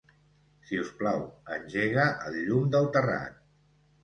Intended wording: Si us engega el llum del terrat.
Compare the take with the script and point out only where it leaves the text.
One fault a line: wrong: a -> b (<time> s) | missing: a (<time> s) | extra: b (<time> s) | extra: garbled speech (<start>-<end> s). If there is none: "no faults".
extra: plau (1.0 s)